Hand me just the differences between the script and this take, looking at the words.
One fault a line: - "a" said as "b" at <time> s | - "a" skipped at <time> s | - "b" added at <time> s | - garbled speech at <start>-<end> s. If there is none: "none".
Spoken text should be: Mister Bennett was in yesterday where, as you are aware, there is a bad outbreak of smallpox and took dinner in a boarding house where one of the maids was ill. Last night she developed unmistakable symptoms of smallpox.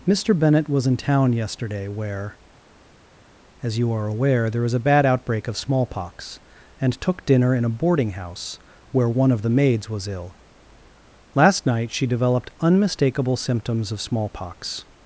- "town" added at 1.0 s